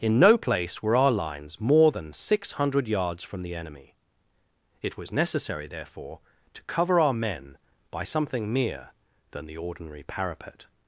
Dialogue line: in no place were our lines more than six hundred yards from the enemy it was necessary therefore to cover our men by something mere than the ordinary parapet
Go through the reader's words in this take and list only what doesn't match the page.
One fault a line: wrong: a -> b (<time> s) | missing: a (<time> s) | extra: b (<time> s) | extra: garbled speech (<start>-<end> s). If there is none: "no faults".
no faults